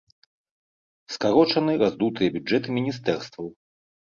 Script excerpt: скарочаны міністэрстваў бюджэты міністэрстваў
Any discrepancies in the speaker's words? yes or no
yes